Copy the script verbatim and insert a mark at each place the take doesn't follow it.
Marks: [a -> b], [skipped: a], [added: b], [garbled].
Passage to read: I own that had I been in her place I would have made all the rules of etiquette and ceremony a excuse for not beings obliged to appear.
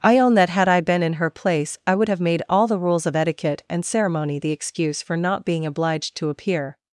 I own that had I been in her place I would have made all the rules of etiquette and ceremony [a -> the] excuse for not [beings -> being] obliged to appear.